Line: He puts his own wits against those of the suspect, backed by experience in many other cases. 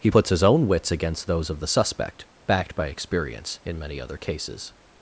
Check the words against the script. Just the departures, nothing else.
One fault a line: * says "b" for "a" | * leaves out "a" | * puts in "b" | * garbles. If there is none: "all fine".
all fine